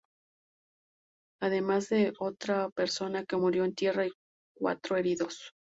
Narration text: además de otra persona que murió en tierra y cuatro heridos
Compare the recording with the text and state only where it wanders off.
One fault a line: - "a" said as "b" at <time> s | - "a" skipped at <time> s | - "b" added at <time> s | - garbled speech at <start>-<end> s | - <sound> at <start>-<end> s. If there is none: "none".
none